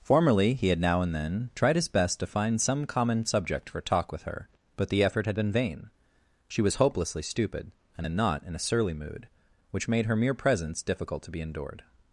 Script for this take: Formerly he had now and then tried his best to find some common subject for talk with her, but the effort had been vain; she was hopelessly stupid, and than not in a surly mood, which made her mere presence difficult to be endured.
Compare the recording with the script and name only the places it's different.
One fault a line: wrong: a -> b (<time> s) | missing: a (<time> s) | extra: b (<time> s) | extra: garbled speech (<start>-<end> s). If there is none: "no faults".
no faults